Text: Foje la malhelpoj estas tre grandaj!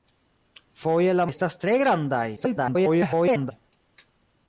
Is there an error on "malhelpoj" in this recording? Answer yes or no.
yes